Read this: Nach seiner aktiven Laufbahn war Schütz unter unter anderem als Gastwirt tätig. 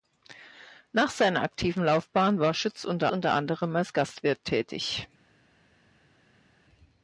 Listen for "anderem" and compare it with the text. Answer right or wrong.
right